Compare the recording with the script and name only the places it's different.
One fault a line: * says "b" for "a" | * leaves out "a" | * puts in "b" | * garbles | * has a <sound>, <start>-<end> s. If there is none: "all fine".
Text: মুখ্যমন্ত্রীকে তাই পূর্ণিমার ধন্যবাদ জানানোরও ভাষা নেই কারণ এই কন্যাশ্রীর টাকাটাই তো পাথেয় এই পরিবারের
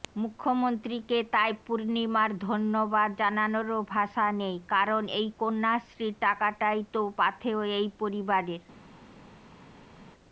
all fine